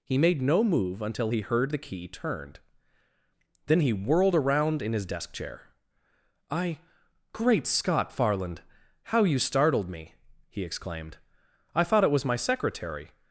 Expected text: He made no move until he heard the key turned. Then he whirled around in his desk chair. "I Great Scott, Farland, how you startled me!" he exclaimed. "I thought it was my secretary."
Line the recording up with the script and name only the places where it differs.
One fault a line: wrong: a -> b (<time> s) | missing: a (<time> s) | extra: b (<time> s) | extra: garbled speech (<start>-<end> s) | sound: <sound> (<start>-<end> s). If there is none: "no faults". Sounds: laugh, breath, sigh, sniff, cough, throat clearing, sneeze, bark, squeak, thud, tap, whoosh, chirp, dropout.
no faults